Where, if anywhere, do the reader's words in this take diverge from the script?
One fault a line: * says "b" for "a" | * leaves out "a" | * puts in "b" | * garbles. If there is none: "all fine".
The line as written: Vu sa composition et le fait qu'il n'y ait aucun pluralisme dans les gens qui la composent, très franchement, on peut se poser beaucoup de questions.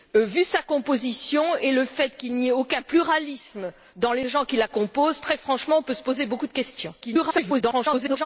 * garbles